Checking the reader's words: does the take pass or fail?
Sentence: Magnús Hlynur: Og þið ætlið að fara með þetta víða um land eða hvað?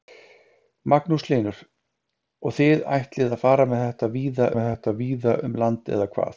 fail